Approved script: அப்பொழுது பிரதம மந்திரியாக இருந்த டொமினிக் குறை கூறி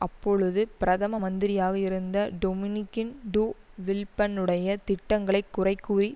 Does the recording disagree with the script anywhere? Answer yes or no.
yes